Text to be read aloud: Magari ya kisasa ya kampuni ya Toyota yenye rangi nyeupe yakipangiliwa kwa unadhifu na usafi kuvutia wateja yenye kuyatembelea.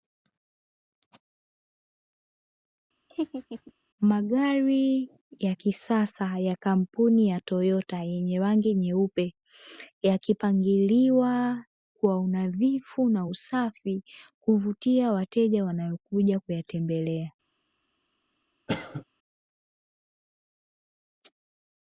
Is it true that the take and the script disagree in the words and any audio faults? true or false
true